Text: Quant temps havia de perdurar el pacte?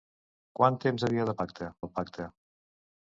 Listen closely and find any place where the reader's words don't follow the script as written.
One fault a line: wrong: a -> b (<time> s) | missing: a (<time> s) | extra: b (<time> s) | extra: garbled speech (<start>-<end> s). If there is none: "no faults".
wrong: perdurar -> pacte (1.4 s)